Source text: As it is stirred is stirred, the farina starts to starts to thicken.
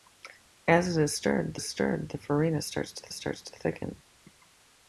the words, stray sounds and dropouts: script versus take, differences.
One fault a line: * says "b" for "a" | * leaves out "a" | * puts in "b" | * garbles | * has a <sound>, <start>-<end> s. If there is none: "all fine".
all fine